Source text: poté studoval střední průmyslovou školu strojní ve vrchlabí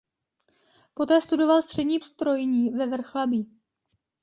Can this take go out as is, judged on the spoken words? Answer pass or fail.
fail